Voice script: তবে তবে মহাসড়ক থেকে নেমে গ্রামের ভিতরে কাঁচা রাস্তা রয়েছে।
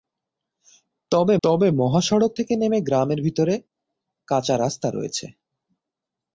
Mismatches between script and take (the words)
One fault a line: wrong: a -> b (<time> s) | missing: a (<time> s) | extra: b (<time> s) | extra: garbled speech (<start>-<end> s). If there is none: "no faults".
no faults